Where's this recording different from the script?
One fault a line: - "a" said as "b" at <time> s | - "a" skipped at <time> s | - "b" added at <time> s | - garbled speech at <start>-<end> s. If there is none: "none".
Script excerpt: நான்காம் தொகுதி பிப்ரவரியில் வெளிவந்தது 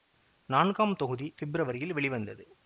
none